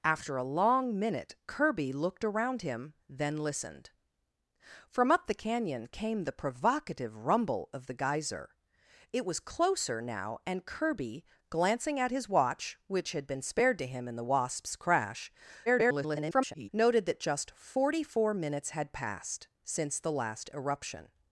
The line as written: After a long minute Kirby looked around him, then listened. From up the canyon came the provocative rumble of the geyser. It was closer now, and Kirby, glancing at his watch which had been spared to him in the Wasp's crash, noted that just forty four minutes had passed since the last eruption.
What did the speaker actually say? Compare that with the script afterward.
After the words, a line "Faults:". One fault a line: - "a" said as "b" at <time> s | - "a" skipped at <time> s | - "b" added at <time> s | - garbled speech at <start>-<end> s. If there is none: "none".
After a long minute Kirby looked around him, then listened. From up the canyon came the provocative rumble of the geyser. It was closer now, and Kirby, glancing at his watch which had been spared to him in the Wasp's crash, [garbled] noted that just forty four minutes had passed since the last eruption.
Faults:
- garbled speech at 15.7-16.7 s